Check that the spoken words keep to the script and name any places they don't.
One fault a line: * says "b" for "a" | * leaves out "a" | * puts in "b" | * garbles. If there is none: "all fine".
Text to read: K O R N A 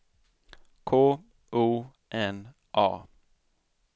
* leaves out "R"